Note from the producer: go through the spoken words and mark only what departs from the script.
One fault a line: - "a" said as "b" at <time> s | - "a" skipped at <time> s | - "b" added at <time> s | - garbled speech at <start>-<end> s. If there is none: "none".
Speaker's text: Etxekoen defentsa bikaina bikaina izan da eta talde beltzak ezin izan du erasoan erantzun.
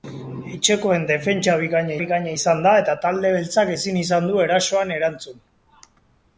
none